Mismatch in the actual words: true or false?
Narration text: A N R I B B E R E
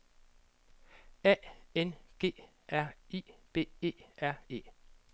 true